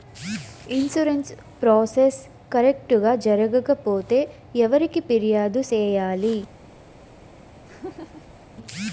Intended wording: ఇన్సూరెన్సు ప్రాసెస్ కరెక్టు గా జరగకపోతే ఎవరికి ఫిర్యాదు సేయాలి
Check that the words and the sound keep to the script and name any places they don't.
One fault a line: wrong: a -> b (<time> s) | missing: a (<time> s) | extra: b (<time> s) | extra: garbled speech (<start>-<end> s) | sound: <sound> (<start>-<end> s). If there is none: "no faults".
sound: laugh (7.7-8.5 s)